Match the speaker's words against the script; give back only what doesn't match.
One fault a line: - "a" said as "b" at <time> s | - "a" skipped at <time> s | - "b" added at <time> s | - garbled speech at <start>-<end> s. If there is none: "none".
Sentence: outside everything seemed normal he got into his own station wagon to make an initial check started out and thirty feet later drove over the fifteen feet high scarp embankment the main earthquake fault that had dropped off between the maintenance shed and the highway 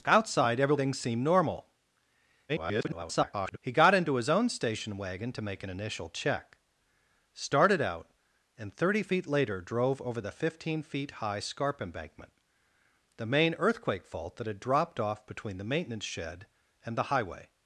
- garbled speech at 2.5-3.6 s